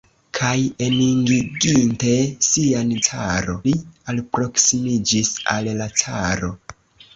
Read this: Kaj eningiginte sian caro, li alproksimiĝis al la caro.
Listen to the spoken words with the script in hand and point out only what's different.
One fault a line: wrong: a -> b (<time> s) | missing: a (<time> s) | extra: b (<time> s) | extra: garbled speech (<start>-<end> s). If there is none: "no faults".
no faults